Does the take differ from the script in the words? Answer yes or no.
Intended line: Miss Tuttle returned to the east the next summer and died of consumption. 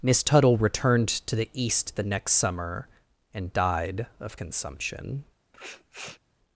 no